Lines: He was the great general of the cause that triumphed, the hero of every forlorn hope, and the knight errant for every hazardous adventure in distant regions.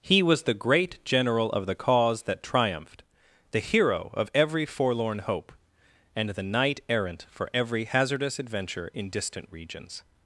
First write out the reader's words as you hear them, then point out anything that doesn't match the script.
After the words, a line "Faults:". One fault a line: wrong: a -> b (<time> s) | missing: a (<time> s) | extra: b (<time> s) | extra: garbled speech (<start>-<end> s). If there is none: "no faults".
He was the great general of the cause that triumphed, the hero of every forlorn hope, and the knight errant for every hazardous adventure in distant regions.
Faults:
no faults